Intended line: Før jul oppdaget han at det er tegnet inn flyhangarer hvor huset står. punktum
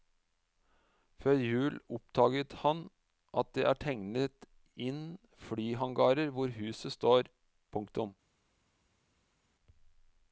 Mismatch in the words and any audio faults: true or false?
false